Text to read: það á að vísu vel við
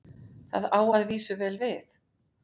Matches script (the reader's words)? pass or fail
pass